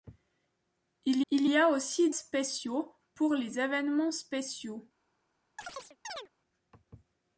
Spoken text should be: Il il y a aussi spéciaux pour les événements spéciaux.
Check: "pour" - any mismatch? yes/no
no